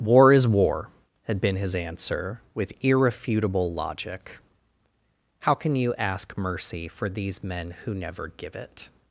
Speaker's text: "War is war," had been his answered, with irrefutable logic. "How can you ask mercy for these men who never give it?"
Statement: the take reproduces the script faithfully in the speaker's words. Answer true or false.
false